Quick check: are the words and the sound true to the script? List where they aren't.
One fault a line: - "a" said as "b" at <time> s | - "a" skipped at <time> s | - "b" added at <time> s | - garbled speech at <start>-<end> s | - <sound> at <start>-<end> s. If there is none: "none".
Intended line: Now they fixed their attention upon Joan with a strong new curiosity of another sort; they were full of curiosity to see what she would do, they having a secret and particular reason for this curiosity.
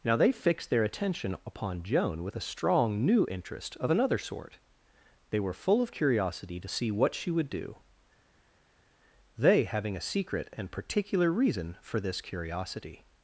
- "curiosity" said as "interest" at 3.3 s